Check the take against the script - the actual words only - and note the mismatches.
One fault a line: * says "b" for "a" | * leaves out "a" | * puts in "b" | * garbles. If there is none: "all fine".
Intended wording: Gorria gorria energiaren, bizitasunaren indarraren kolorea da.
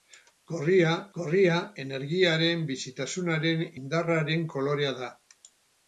all fine